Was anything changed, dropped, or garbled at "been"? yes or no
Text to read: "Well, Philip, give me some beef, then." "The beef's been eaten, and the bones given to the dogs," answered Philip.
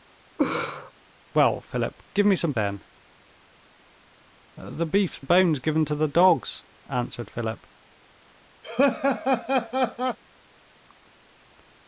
yes